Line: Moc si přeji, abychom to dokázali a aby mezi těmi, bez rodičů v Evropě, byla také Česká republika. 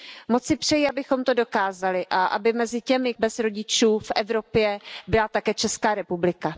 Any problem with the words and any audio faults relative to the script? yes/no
no